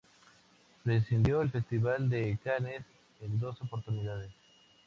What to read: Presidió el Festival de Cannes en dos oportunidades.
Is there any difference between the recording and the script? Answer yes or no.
no